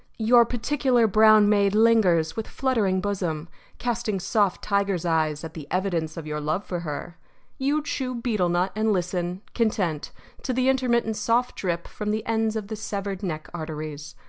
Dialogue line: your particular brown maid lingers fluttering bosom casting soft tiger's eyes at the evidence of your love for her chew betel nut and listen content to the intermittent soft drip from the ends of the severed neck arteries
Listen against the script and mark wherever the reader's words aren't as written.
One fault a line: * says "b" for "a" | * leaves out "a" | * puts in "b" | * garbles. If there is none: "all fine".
* puts in "with"
* puts in "you"